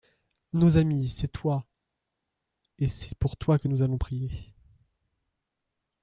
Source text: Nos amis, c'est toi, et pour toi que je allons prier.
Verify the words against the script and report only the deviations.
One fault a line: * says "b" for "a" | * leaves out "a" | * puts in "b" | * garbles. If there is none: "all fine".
* puts in "c'est"
* says "nous" for "je"